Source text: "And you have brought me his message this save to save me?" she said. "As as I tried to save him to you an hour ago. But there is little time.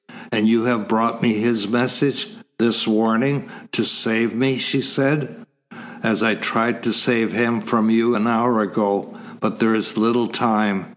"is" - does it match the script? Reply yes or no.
yes